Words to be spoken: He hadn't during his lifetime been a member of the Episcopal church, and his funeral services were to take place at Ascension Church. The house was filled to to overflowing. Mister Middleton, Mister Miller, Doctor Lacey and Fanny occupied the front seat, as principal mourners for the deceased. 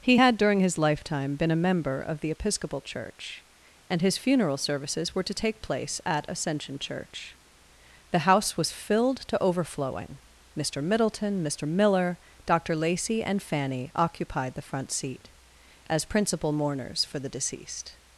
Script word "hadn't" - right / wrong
wrong